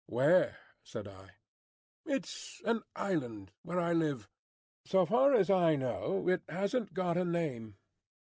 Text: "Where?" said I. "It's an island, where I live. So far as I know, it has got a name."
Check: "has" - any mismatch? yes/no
yes